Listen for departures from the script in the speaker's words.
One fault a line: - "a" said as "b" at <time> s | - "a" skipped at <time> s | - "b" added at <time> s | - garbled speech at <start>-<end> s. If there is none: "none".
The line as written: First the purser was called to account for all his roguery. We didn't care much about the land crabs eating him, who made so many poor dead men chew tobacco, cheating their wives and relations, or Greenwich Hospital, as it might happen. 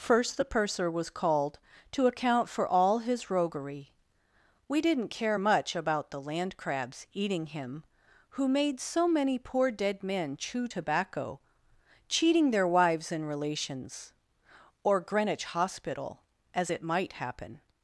none